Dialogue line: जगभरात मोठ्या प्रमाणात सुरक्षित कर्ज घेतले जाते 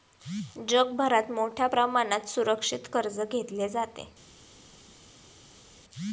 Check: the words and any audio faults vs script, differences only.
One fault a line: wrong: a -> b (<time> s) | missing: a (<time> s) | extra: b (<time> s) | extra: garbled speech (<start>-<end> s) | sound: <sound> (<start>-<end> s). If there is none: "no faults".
no faults